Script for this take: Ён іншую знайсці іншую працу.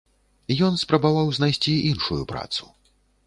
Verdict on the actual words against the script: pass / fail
fail